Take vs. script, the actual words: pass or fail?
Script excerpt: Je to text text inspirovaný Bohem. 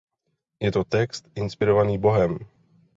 fail